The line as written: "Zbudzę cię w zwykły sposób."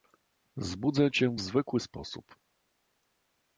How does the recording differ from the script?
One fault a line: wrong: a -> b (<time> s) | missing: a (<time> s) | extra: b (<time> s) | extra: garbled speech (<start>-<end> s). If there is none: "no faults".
no faults